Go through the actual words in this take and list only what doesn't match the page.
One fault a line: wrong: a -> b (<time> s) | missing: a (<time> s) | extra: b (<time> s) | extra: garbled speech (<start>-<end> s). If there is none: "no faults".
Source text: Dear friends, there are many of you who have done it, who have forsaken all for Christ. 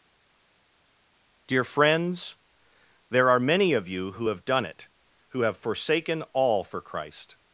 no faults